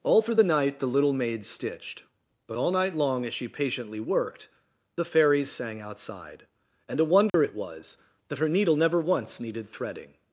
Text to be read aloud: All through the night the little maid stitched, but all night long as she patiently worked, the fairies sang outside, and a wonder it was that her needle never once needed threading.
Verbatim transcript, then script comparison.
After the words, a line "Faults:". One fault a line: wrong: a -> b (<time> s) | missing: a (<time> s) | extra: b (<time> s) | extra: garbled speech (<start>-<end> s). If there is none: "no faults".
All through the night the little maid stitched, but all night long as she patiently worked, the fairies sang outside, and a wonder it was that her needle never once needed threading.
Faults:
no faults